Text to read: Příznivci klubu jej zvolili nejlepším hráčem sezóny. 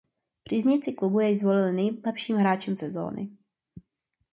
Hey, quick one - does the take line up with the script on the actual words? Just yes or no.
yes